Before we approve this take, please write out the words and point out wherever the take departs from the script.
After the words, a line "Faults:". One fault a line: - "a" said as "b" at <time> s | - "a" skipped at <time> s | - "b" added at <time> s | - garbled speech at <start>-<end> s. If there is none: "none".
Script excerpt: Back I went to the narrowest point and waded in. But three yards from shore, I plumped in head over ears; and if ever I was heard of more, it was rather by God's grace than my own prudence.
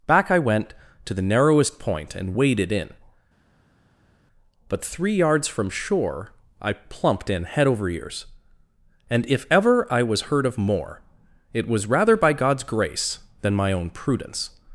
Back I went to the narrowest point and waded in. But three yards from shore, I plumped in head over ears; and if ever I was heard of more, it was rather by God's grace than my own prudence.
Faults:
none